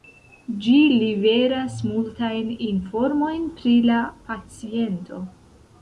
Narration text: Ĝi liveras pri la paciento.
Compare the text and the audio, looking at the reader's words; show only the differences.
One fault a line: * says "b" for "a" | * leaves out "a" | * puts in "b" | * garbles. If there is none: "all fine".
* puts in "multajn informojn"